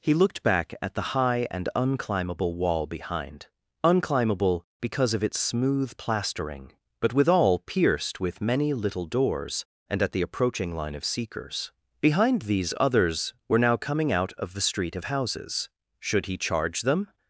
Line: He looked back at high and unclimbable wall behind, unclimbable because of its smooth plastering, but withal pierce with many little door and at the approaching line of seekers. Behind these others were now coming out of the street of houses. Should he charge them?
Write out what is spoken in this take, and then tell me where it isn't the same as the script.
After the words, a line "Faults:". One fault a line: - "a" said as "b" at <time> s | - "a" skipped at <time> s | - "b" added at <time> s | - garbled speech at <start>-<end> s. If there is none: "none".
He looked back at the high and unclimbable wall behind, unclimbable because of its smooth plastering, but withal pierced with many little doors and at the approaching line of seekers. Behind these others were now coming out of the street of houses. Should he charge them?
Faults:
- "the" added at 0.9 s
- "pierce" said as "pierced" at 7.6 s
- "door" said as "doors" at 9.1 s